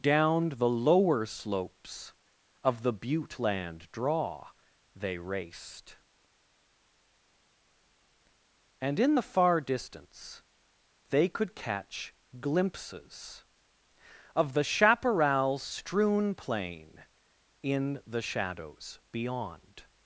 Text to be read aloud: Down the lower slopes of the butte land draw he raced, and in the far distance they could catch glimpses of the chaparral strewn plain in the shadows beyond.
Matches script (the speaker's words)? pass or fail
fail